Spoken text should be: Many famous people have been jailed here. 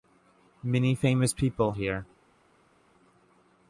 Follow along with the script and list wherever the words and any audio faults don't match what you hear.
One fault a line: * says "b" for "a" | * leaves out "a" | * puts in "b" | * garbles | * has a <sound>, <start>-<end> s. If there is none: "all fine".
* leaves out "have been jailed"